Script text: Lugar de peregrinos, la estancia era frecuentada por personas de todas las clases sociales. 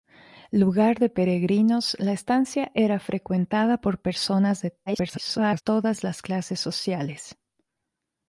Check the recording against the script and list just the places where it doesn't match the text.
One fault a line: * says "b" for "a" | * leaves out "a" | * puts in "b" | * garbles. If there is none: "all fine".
* garbles